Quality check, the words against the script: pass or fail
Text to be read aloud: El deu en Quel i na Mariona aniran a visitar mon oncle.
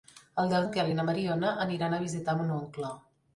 pass